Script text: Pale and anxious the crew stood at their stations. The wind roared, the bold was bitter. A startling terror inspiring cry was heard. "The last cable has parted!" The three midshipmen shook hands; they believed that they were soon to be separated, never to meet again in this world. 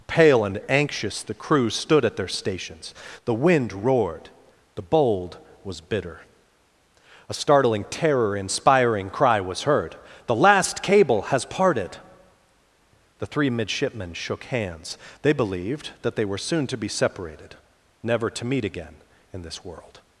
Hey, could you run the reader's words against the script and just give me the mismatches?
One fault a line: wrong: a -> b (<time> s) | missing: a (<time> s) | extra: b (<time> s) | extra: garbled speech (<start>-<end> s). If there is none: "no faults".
no faults